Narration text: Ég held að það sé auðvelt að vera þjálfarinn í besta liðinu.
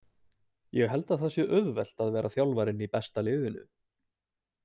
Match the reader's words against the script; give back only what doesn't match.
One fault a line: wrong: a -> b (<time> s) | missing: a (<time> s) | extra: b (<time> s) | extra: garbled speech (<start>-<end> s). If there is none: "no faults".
no faults